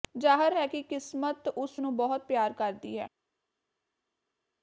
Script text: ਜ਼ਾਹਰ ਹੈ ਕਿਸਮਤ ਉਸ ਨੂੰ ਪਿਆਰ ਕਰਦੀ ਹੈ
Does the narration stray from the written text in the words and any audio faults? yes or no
yes